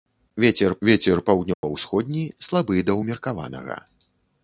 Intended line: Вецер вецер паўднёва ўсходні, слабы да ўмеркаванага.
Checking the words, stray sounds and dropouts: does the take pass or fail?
fail